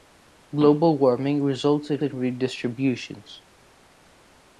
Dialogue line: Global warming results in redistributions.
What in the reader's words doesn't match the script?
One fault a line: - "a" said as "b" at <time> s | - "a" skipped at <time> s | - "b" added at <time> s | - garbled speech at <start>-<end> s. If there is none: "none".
- "in" added at 2.0 s